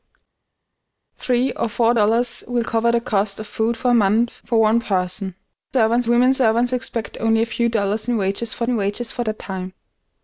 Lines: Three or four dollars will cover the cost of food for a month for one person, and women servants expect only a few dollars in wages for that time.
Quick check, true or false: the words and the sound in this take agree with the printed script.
false